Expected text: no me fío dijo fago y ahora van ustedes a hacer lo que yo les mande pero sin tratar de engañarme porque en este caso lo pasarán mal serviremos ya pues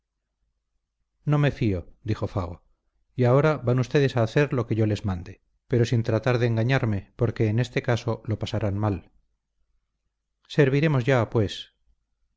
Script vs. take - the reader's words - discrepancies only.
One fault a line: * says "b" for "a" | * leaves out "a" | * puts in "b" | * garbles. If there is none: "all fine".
all fine